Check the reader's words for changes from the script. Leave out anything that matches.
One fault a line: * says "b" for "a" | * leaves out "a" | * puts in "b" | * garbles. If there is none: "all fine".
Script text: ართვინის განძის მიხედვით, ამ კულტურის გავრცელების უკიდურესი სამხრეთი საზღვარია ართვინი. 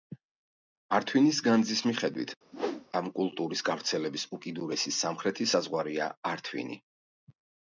all fine